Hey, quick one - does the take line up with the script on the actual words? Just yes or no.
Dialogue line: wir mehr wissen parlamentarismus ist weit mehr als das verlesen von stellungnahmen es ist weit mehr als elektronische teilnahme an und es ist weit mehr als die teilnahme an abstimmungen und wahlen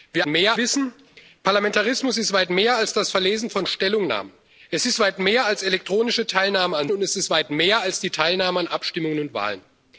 yes